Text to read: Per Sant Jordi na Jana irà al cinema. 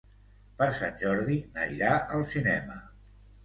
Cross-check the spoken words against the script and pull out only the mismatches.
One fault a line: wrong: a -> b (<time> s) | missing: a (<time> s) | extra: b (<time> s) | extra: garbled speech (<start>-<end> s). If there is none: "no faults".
missing: Jana (1.7 s)